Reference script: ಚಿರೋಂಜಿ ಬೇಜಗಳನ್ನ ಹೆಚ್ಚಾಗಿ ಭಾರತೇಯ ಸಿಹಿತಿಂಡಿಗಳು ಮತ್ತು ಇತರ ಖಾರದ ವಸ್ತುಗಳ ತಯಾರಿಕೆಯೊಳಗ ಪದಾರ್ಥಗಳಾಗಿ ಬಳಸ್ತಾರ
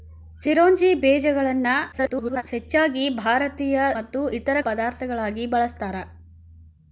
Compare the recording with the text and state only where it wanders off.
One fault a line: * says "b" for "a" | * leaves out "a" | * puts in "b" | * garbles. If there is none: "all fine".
* garbles
* leaves out "ಸಿಹಿತಿಂಡಿಗಳು"
* leaves out "ಖಾರದ ವಸ್ತುಗಳ ತಯಾರಿಕೆಯೊಳಗ"